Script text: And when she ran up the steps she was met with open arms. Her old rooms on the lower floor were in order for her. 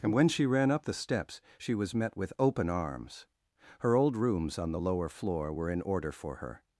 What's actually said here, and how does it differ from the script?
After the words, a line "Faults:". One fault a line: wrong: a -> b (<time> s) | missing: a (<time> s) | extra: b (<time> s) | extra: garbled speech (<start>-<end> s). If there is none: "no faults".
And when she ran up the steps she was met with open arms. Her old rooms on the lower floor were in order for her.
Faults:
no faults